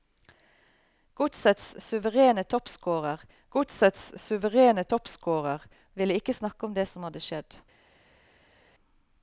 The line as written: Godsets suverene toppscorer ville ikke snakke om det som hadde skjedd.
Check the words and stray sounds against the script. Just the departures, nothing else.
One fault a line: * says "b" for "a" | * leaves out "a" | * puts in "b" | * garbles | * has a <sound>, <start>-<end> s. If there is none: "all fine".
* puts in "godsets suverene toppscorer"